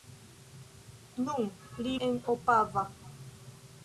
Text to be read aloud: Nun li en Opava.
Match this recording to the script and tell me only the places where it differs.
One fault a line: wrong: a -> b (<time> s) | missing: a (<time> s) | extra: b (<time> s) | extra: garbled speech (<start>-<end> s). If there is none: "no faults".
no faults